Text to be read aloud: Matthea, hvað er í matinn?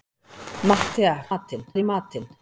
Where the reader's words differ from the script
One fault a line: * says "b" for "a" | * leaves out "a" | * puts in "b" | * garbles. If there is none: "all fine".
* says "matinn" for "hvað"